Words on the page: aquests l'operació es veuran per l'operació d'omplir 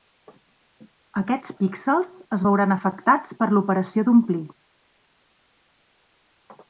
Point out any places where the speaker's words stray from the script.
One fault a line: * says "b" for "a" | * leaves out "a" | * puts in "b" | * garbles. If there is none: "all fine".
* says "píxels" for "l'operació"
* puts in "afectats"